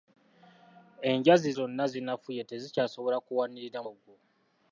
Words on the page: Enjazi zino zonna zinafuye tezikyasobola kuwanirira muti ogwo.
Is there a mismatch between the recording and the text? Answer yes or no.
yes